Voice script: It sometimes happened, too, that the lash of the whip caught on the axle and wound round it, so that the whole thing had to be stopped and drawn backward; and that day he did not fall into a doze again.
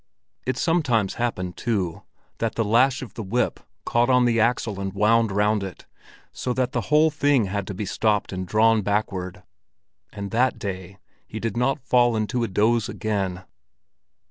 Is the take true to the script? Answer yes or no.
yes